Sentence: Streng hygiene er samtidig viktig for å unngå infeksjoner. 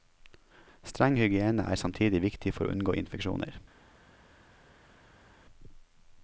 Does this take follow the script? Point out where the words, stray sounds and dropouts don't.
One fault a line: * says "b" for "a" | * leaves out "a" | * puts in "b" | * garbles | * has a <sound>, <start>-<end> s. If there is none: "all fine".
all fine